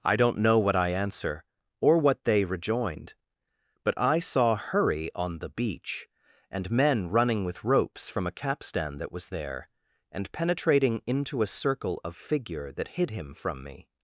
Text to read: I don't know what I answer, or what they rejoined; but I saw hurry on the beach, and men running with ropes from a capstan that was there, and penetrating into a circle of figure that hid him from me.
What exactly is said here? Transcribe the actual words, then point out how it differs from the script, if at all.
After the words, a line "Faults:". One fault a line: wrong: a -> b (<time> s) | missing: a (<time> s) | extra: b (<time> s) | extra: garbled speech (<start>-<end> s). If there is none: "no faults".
I don't know what I answer, or what they rejoined; but I saw hurry on the beach, and men running with ropes from a capstan that was there, and penetrating into a circle of figure that hid him from me.
Faults:
no faults